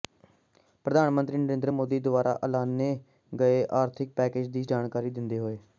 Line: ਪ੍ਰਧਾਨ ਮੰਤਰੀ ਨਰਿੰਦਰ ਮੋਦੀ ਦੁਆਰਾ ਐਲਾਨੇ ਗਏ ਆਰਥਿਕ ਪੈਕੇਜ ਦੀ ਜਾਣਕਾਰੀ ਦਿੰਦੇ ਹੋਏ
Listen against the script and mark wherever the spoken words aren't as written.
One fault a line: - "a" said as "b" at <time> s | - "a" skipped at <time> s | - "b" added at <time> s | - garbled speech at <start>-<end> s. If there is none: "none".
none